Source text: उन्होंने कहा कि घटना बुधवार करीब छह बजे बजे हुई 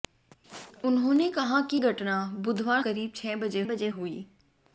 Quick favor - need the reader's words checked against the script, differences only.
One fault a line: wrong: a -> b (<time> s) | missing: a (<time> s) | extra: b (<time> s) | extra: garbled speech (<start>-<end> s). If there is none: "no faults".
no faults